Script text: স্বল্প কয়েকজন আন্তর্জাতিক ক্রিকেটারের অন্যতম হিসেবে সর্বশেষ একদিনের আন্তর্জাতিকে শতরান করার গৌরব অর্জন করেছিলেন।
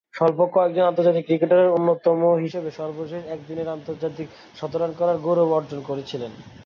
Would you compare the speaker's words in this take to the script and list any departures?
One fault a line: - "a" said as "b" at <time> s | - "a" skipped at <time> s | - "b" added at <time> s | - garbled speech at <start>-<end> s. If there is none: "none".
none